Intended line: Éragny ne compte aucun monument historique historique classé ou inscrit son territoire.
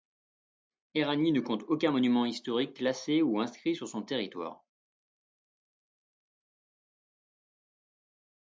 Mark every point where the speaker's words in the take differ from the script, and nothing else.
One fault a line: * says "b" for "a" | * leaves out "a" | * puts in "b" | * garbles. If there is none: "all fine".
* leaves out "historique"
* puts in "sur"